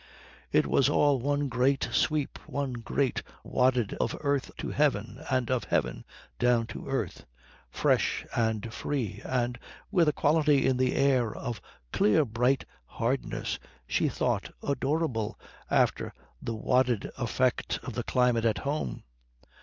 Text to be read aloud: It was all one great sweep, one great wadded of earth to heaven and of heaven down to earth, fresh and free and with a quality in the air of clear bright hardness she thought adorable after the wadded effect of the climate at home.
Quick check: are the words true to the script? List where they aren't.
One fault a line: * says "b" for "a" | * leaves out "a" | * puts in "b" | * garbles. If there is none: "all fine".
all fine